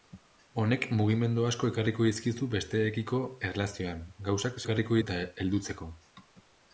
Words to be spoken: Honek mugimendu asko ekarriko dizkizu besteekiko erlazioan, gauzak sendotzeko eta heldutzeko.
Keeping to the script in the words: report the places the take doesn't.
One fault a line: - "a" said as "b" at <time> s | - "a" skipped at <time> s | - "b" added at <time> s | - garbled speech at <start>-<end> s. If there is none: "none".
- "sendotzeko" said as "ekarriko" at 4.6 s